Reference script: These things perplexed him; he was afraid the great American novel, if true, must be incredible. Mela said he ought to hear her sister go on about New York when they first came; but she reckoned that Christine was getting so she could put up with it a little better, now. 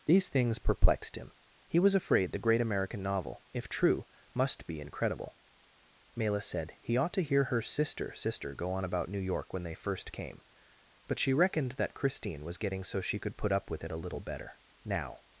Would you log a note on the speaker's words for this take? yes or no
yes